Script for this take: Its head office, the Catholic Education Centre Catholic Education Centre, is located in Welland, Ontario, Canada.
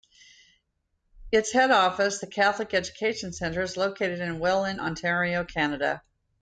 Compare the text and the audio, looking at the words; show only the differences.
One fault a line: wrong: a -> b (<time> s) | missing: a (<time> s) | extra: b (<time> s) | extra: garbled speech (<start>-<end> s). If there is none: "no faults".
missing: Catholic Education Centre (3.6 s)